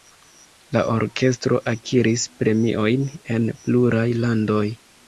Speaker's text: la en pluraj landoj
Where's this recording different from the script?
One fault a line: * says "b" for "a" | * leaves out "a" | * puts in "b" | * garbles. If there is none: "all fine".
* puts in "orkestro akiris premiojn"